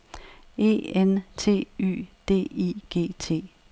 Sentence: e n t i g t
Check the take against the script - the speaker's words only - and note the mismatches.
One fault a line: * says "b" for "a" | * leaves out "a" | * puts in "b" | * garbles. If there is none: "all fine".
* puts in "y d"